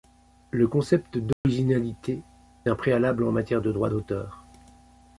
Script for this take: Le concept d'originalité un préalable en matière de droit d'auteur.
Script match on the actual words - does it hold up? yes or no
yes